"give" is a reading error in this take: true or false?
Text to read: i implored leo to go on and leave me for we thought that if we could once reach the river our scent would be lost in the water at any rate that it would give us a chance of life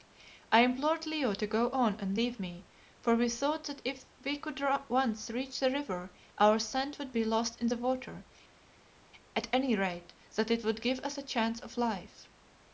false